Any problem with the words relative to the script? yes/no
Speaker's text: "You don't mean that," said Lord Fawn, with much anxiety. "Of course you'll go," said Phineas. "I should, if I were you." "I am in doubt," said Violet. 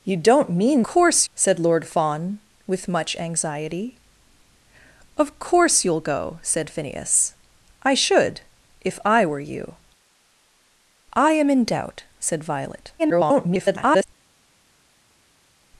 yes